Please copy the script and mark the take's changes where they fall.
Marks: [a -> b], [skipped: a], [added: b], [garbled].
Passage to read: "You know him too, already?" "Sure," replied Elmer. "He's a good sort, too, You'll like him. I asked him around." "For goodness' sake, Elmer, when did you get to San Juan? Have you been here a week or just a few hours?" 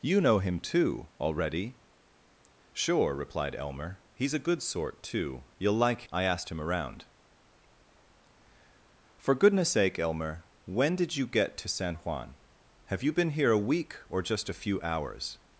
"You know him too, already?" "Sure," replied Elmer. "He's a good sort, too, You'll like [skipped: him.] I asked him around." "For goodness' sake, Elmer, when did you get to San Juan? Have you been here a week or just a few hours?"